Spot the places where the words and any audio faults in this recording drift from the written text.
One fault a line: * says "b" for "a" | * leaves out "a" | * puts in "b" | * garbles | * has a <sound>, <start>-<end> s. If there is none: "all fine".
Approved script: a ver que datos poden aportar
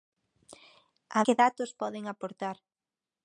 * leaves out "ver"